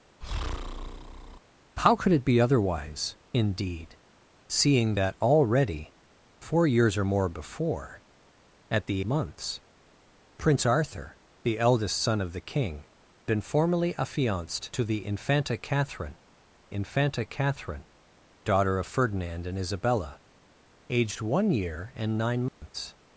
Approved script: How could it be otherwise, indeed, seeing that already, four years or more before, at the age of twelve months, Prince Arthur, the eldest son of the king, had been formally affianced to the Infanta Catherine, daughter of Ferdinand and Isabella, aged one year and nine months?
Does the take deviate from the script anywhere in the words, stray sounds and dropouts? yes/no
yes